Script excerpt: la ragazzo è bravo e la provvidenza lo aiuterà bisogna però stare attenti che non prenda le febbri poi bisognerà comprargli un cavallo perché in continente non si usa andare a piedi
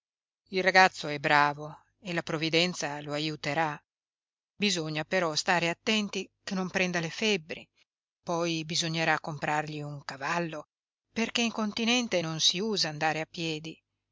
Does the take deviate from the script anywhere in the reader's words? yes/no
yes